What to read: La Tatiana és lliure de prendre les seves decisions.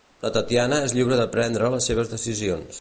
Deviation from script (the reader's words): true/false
false